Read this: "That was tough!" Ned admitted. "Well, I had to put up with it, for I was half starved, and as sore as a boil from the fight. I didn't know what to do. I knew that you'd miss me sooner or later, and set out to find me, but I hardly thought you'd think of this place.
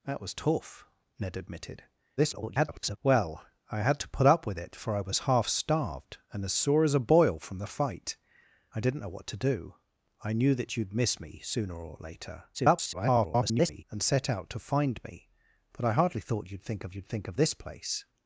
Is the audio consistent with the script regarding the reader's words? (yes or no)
no